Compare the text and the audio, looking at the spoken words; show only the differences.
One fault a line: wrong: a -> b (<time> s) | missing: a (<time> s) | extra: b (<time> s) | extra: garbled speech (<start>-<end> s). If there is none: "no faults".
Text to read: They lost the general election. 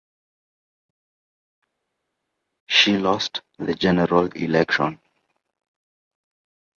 wrong: They -> She (2.7 s)